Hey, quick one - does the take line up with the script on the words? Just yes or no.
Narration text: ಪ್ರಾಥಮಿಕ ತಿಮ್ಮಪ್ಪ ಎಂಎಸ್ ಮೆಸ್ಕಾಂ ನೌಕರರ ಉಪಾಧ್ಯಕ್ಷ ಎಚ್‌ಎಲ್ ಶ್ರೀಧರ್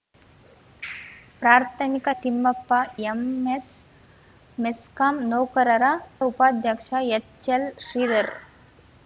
yes